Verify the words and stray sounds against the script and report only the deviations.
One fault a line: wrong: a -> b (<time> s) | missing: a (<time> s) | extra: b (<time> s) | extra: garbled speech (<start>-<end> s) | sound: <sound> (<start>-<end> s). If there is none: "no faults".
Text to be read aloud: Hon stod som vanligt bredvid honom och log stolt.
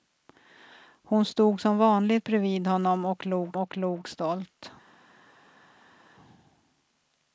extra: och log (3.6 s)